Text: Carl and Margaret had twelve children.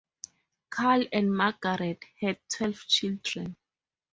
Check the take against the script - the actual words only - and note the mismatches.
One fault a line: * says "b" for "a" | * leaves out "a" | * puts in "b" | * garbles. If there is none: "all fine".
all fine